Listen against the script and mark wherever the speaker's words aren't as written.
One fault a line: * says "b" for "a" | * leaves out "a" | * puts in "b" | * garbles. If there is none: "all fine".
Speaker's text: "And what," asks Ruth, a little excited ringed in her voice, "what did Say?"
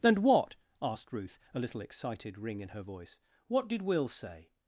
* says "asked" for "asks"
* says "ring" for "ringed"
* puts in "Will"